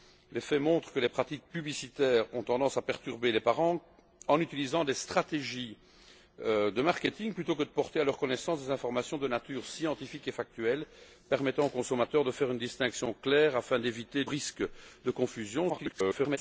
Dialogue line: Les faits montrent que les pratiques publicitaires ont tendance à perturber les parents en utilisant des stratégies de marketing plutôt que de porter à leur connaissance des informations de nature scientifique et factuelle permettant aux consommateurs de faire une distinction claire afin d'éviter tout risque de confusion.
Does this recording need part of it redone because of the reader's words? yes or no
yes